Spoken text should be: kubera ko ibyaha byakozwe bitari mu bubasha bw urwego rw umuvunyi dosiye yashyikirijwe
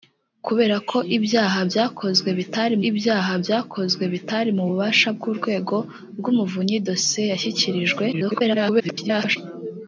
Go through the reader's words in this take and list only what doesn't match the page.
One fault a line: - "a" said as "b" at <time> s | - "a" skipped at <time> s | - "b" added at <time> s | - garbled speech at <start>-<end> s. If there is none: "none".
- "ibyaha byakozwe bitari" added at 2.9 s
- garbled speech at 8.1-9.4 s